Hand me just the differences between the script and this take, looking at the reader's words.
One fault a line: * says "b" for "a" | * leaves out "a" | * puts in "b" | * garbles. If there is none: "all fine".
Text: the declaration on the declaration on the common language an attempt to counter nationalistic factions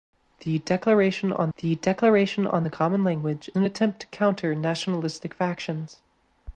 all fine